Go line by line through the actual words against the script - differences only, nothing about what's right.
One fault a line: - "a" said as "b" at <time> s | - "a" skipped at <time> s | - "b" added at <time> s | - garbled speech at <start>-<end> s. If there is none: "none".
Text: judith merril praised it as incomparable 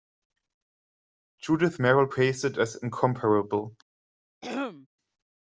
none